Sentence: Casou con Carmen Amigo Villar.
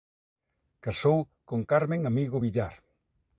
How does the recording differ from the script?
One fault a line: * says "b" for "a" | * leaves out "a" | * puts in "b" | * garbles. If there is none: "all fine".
all fine